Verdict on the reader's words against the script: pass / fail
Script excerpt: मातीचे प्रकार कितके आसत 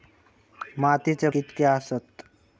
fail